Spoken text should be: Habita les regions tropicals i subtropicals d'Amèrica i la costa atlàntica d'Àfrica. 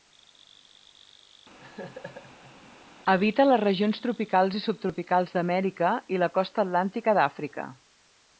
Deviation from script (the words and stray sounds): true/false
true